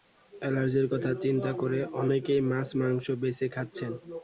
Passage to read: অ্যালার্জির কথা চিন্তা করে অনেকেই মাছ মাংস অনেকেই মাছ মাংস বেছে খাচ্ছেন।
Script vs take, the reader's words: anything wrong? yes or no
yes